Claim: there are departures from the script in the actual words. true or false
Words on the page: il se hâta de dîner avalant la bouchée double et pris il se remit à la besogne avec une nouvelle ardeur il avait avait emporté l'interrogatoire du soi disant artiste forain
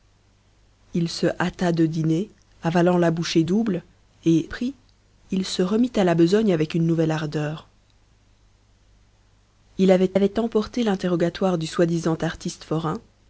false